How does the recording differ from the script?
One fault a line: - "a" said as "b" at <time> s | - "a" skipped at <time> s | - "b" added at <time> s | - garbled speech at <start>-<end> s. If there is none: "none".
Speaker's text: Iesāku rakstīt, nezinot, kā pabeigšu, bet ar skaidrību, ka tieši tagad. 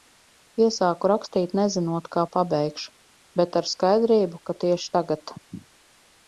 none